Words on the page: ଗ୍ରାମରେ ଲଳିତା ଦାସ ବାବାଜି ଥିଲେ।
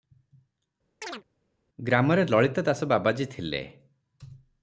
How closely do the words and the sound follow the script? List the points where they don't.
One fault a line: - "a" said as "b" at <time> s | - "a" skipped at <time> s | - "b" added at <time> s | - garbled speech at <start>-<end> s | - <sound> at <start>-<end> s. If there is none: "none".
- chirp at 1.0-1.2 s